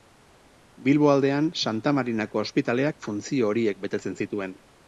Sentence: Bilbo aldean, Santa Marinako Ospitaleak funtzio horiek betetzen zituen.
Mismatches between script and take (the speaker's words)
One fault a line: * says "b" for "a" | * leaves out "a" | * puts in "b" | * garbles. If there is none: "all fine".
all fine